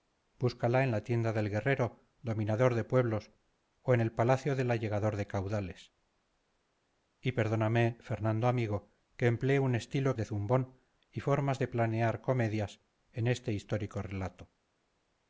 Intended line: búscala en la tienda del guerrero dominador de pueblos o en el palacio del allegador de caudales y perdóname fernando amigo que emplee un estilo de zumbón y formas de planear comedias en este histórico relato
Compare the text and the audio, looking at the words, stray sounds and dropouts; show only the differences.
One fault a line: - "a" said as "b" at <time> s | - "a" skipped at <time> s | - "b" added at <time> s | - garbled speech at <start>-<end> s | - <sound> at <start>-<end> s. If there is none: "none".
none